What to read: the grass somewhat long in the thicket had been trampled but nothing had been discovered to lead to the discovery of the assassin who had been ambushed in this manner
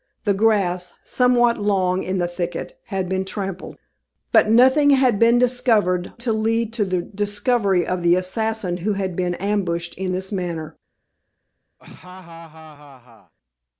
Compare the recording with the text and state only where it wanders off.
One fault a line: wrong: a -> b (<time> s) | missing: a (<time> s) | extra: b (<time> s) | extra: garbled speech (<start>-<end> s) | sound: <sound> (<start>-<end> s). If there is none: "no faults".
sound: laugh (11.8-13.3 s)